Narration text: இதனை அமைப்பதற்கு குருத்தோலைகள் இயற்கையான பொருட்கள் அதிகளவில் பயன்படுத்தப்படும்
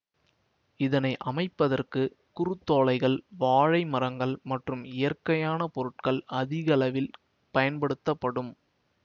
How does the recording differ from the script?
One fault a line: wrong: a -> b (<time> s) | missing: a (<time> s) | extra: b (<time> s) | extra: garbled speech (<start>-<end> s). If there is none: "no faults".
extra: வாழை மரங்கள் மற்றும் (3.4 s)